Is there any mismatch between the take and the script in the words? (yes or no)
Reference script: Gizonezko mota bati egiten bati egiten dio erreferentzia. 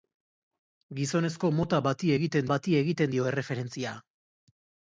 no